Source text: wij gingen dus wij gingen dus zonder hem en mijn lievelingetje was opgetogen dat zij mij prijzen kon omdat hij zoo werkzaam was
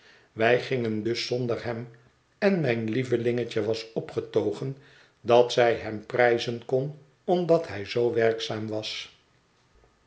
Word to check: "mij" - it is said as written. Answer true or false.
false